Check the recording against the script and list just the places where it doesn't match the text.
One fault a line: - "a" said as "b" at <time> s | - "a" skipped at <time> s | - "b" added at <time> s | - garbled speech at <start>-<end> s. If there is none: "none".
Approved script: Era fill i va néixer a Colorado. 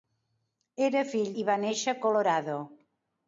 none